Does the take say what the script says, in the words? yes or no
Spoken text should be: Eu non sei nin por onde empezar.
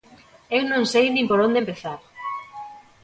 yes